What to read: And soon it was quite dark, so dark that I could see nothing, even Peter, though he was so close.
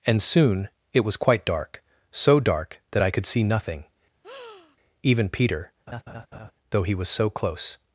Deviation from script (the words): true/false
false